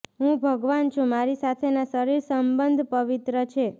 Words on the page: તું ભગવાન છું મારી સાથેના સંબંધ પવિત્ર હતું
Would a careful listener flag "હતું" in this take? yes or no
yes